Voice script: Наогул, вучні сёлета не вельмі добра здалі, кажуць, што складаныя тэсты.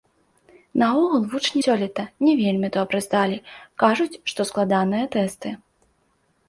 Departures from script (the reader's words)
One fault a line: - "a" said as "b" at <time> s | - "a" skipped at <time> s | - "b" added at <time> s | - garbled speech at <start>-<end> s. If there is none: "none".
none